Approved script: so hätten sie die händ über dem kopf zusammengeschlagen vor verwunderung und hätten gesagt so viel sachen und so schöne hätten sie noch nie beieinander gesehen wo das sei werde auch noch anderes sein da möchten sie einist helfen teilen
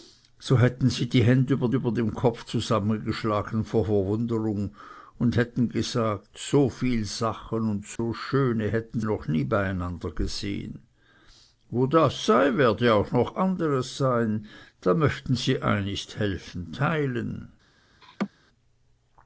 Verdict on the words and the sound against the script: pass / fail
fail